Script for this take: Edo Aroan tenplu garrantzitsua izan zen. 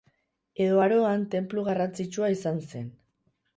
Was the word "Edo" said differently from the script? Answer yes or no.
no